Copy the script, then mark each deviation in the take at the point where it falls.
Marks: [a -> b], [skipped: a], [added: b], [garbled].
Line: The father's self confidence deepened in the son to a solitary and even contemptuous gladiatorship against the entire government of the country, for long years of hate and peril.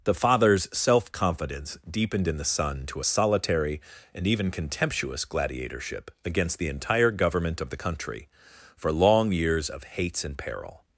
The father's self confidence deepened in the son to a solitary and even contemptuous gladiatorship against the entire government of the country, for long years of [hate -> hates] and peril.